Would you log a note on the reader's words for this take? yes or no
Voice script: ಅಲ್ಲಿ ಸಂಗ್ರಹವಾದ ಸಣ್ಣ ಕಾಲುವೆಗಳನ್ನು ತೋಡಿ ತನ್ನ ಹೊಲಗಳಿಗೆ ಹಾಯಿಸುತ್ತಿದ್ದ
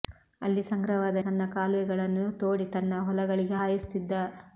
no